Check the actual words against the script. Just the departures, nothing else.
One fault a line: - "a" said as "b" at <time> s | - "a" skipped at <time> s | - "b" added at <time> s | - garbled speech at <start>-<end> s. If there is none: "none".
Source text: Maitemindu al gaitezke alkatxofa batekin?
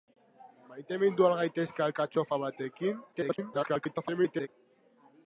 - garbled speech at 3.1-4.5 s